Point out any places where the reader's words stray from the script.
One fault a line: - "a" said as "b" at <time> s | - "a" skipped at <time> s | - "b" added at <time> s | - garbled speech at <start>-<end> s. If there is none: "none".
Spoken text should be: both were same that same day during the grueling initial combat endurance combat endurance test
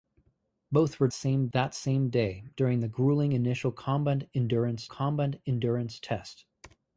none